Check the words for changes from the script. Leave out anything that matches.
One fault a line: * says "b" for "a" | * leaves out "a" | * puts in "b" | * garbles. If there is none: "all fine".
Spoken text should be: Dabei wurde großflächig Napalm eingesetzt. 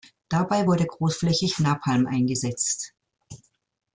all fine